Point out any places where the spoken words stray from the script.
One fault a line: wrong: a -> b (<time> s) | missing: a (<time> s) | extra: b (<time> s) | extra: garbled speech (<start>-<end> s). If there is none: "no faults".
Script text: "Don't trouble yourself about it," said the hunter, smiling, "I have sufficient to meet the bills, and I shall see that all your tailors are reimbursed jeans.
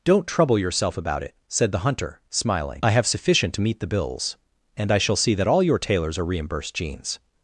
no faults